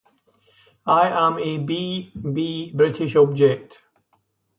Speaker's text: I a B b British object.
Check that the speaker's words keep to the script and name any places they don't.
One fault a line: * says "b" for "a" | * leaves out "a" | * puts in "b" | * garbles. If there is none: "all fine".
* puts in "am"